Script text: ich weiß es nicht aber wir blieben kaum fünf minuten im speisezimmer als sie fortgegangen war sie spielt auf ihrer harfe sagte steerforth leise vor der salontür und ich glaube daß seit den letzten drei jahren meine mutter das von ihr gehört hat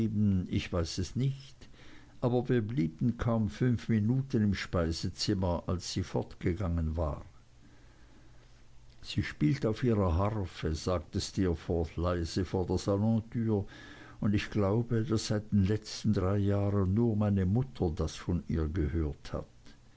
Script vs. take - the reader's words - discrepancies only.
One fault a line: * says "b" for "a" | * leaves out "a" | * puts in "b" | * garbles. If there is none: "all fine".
* puts in "nur"